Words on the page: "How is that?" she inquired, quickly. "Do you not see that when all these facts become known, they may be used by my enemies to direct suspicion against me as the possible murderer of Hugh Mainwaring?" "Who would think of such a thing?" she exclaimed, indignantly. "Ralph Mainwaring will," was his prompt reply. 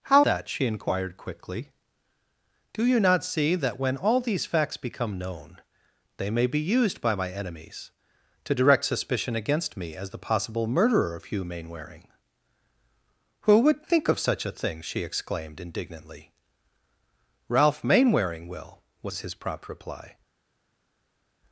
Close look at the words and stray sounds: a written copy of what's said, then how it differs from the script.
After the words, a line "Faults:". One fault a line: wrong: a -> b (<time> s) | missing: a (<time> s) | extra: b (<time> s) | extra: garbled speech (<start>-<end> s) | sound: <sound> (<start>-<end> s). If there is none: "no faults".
"How that?" she inquired, quickly. "Do you not see that when all these facts become known, they may be used by my enemies to direct suspicion against me as the possible murderer of Hugh Mainwaring?" "Who would think of such a thing?" she exclaimed, indignantly. "Ralph Mainwaring will," was his prompt reply.
Faults:
missing: is (0.2 s)